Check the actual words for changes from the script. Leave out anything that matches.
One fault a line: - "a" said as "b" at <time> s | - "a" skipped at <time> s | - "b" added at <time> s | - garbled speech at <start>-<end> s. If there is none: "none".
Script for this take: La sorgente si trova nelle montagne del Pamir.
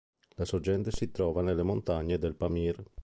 none